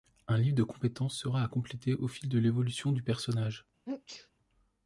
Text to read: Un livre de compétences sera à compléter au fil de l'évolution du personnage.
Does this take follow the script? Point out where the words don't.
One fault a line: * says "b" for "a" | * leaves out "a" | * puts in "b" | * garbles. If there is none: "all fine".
all fine